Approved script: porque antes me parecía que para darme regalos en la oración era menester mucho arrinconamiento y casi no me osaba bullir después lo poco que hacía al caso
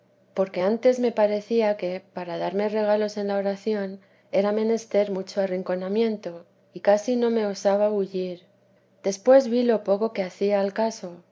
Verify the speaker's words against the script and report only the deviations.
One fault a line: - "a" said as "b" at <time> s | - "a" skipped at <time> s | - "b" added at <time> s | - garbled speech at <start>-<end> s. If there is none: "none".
- "vi" added at 9.5 s